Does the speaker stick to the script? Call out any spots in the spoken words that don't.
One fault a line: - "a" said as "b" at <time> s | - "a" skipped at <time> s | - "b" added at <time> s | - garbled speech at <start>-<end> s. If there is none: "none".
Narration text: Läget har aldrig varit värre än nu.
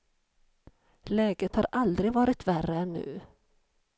none